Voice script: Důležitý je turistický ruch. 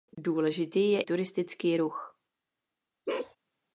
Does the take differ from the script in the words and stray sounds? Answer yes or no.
yes